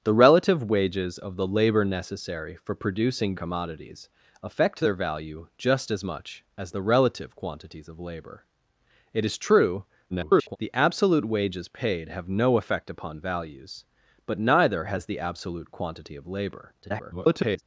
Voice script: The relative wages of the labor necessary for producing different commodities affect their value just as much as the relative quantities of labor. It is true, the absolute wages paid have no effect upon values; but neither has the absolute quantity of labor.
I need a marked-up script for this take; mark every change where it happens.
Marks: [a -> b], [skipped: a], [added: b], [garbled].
The relative wages of the labor necessary for producing [skipped: different] commodities affect their value just as much as the relative quantities of labor. It is true, [garbled] the absolute wages paid have no effect upon values; but neither has the absolute quantity of labor. [garbled]